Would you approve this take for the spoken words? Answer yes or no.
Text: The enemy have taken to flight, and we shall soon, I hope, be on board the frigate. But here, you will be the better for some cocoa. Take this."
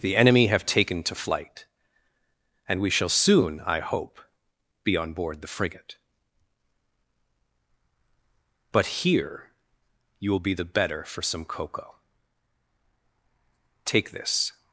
yes